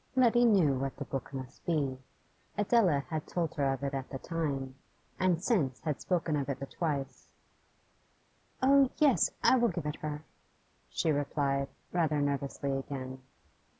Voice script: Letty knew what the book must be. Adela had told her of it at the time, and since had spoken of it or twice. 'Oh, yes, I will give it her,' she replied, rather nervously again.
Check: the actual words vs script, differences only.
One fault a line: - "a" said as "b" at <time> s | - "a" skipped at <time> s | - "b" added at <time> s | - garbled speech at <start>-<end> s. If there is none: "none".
none